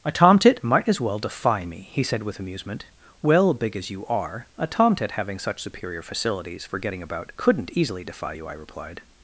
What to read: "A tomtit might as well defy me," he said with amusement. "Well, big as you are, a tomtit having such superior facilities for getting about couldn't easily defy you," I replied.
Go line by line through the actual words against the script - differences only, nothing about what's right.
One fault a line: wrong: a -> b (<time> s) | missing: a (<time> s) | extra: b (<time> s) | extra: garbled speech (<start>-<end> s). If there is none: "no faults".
no faults